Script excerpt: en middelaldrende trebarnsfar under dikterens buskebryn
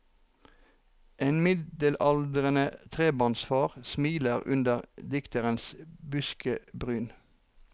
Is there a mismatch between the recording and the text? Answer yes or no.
yes